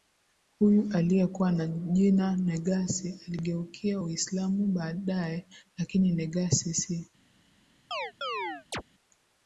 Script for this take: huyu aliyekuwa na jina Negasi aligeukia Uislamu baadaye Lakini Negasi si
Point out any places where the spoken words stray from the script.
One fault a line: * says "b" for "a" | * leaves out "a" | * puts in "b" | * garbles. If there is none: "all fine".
all fine